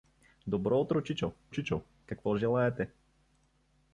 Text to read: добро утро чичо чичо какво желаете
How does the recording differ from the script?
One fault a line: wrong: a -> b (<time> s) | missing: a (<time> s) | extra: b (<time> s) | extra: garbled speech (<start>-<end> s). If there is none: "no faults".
no faults